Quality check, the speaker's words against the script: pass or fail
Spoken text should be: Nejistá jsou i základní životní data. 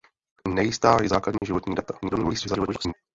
fail